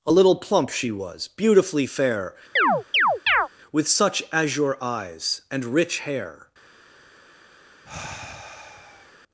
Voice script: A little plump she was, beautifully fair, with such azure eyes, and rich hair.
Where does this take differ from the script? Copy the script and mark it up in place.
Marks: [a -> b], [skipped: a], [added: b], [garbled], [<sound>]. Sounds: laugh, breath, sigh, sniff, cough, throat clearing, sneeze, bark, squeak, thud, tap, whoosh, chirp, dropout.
A little plump she was, beautifully fair, [chirp] with such azure eyes, and rich hair. [sigh]